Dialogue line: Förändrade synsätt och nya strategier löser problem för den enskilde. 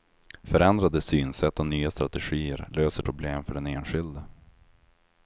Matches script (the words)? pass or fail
pass